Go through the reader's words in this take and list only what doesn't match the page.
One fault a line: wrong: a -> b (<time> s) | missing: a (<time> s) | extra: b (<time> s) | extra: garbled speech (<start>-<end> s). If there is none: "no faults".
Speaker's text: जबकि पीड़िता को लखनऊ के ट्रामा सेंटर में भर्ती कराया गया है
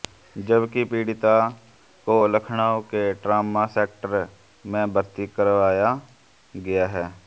no faults